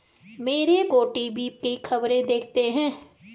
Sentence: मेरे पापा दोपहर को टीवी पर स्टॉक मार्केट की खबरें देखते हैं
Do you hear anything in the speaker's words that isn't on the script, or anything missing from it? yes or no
yes